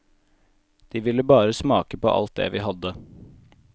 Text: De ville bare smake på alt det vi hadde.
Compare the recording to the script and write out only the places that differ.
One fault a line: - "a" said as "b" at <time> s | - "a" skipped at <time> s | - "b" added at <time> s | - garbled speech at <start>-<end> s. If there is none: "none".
none